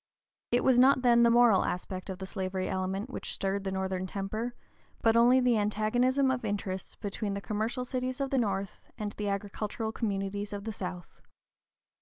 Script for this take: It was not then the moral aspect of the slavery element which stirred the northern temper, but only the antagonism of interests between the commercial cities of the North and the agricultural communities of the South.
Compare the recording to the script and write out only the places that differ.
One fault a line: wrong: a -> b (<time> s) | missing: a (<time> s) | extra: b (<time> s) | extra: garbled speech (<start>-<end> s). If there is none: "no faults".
no faults